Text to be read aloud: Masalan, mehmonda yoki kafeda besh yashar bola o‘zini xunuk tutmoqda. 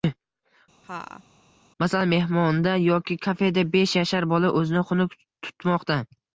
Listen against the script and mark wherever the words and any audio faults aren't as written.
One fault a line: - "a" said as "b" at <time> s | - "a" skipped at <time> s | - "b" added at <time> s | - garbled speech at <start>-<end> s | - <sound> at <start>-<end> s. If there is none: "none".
- laugh at 0.8-1.2 s